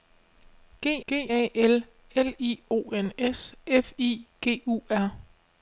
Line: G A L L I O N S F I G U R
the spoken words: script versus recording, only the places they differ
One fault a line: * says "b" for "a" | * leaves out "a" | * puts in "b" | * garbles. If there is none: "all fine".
* puts in "g"